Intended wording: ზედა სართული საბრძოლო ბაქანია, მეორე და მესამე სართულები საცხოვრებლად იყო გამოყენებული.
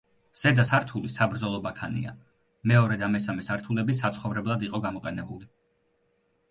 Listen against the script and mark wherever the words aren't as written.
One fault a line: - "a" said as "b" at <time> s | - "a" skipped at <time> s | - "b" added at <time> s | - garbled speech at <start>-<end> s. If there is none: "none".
none